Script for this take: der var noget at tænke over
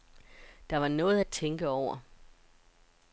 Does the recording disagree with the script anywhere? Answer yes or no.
no